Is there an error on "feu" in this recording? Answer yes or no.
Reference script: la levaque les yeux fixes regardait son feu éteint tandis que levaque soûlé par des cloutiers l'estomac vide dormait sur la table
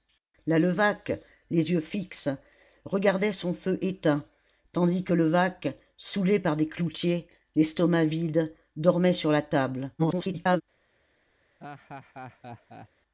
no